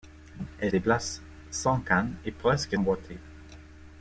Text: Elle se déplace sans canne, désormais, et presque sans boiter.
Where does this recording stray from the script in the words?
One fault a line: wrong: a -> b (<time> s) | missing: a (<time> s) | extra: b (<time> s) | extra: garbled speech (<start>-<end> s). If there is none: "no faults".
missing: se (0.7 s)
missing: désormais (2.1 s)
missing: sans (2.8 s)